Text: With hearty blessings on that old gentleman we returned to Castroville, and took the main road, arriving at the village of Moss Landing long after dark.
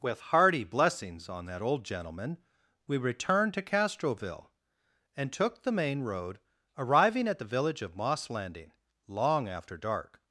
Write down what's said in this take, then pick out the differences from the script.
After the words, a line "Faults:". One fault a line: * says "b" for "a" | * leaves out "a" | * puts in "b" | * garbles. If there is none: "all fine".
With hearty blessings on that old gentleman we returned to Castroville, and took the main road, arriving at the village of Moss Landing long after dark.
Faults:
all fine